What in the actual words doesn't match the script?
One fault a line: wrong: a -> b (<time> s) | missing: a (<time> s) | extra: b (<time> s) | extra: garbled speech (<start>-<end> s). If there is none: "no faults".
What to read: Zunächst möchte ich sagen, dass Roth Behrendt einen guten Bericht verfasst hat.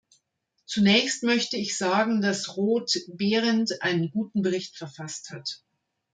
no faults